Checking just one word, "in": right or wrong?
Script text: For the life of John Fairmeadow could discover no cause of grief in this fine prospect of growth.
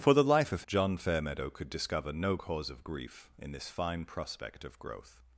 right